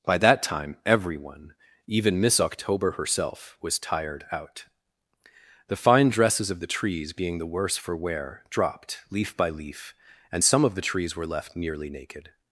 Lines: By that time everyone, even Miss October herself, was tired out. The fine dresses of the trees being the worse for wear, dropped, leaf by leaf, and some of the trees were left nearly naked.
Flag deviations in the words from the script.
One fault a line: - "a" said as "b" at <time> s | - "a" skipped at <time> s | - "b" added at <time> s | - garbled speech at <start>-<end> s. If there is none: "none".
none